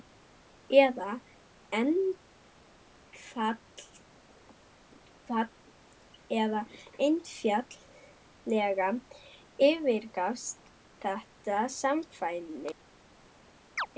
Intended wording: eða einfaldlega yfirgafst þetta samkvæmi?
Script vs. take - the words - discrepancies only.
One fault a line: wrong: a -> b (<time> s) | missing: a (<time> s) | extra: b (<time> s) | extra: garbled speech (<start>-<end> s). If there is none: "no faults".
no faults